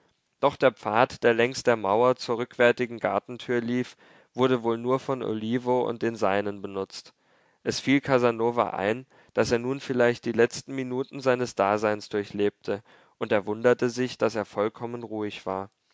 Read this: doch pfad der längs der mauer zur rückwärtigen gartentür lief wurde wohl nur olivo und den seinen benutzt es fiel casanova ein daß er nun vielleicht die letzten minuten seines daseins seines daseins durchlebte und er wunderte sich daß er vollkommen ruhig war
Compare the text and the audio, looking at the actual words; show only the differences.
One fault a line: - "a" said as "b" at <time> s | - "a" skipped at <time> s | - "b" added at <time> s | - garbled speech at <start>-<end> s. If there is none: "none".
- "der" added at 0.6 s
- "von" added at 5.0 s
- "seines daseins" skipped at 12.1 s